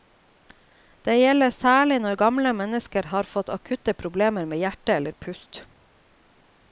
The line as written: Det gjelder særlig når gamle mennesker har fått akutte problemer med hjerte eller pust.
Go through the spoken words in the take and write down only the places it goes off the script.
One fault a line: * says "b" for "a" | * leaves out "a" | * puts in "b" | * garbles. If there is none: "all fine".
all fine